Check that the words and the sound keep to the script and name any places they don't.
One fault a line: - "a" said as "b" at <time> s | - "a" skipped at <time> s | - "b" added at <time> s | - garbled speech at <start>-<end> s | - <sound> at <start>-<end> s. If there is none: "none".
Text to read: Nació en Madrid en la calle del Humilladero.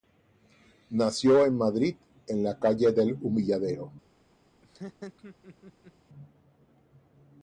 - laugh at 4.6-5.9 s